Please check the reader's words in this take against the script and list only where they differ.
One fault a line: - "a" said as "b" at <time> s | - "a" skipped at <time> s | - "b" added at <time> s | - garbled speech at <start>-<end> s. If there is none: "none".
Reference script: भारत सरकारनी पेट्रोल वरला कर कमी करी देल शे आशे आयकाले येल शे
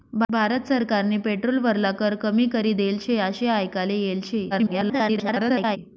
- garbled speech at 4.5-5.8 s